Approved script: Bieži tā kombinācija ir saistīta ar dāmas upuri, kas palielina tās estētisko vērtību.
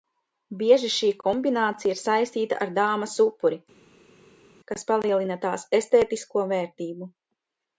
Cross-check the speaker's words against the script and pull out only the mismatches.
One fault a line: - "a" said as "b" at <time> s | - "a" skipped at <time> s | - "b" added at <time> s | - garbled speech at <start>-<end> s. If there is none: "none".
- "tā" said as "šī" at 0.9 s